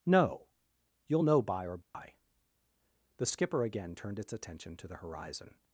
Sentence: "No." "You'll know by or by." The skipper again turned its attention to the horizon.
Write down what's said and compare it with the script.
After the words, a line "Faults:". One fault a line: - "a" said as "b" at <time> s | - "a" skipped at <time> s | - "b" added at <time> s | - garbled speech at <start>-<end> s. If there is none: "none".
"No." "You'll know by or by." The skipper again turned its attention to the horizon.
Faults:
none